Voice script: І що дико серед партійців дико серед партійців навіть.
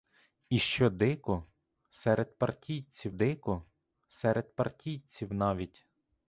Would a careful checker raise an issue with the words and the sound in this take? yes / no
no